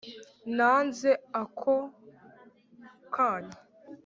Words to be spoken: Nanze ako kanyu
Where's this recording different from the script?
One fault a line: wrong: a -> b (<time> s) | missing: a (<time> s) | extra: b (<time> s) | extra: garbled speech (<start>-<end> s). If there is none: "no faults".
no faults